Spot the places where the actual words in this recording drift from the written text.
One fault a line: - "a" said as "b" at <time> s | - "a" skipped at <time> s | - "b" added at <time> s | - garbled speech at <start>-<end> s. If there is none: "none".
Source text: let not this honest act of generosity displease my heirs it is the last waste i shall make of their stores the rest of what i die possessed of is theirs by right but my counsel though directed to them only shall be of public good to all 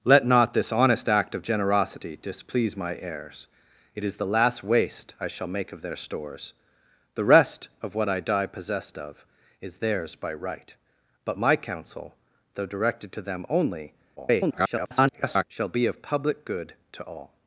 - garbled speech at 14.2-15.4 s